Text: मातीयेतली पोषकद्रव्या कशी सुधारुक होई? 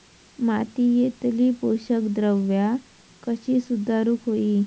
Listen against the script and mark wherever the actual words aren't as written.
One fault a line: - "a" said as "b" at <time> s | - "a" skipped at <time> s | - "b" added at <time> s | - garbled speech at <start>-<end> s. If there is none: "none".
none